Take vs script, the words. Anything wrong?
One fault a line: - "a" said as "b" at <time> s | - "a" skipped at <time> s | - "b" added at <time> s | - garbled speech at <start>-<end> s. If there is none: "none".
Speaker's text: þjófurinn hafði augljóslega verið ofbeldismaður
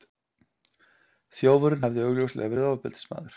none